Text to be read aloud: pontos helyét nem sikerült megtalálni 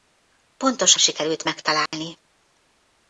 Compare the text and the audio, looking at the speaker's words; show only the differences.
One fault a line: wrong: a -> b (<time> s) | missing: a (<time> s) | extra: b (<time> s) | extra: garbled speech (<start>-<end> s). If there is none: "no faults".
missing: helyét nem (0.9 s)